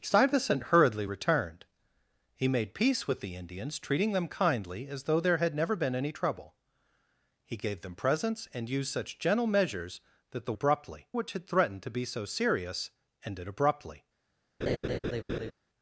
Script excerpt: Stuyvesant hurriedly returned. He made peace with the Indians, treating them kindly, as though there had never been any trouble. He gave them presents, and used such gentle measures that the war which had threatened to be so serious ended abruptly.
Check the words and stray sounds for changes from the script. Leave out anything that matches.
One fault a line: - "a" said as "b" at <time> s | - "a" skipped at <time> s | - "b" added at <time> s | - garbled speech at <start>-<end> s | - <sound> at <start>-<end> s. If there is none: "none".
- "war" said as "abruptly" at 10.5 s
- laugh at 14.6-15.5 s